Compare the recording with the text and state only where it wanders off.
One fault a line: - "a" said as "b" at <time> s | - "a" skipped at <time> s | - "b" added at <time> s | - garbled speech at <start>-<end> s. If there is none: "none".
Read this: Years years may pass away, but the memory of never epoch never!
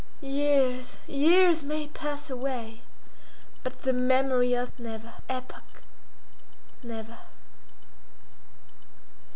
none